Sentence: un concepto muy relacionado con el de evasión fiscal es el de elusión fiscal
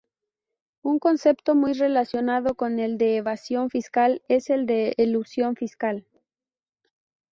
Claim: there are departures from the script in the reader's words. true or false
false